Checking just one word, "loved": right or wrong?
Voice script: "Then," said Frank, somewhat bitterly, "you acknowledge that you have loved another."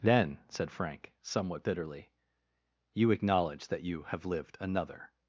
wrong